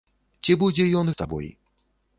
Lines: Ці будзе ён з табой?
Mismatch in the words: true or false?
false